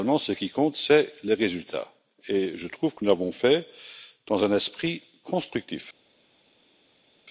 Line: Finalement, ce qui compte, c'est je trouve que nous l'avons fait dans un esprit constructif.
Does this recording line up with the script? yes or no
no